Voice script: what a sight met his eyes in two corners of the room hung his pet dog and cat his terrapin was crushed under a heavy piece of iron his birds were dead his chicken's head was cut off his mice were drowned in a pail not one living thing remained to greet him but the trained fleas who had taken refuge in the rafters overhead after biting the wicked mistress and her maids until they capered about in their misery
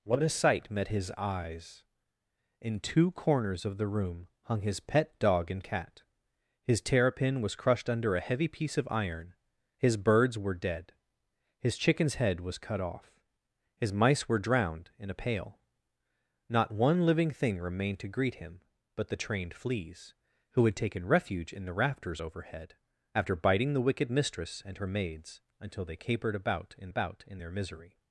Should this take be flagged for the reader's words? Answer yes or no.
yes